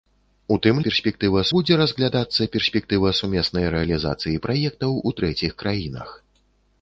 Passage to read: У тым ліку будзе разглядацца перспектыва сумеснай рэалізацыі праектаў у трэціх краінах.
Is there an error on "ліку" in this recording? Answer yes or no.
yes